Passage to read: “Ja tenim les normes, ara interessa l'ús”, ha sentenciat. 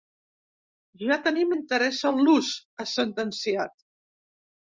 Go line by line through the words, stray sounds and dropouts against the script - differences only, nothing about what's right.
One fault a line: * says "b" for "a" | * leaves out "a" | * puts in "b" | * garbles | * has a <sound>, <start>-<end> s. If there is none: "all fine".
* leaves out "les normes ara"